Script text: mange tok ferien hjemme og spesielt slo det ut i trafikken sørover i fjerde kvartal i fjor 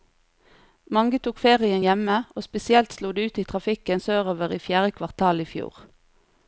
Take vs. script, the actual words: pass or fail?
pass